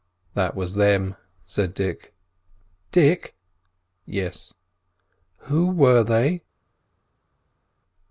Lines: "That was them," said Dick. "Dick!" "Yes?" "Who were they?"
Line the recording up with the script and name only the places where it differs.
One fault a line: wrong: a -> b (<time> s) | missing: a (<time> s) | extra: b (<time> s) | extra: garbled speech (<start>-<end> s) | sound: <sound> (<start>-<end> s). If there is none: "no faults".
no faults